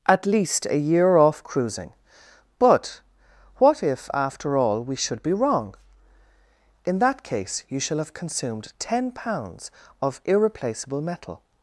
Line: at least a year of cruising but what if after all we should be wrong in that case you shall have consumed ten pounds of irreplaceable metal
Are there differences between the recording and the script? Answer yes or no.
yes